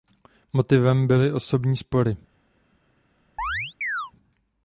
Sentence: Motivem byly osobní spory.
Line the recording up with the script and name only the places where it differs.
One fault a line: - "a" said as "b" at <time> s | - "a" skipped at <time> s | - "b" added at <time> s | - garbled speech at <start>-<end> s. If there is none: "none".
none